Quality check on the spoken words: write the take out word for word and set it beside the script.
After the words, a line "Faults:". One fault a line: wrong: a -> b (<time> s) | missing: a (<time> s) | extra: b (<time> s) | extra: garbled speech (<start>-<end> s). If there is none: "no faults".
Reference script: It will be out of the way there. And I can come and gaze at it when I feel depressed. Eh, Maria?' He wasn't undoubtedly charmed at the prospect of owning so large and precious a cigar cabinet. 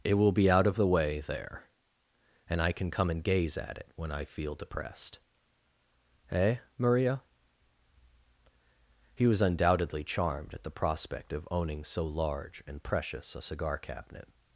It will be out of the way there. And I can come and gaze at it when I feel depressed. Eh, Maria?' He was undoubtedly charmed at the prospect of owning so large and precious a cigar cabinet.
Faults:
wrong: wasn't -> was (9.3 s)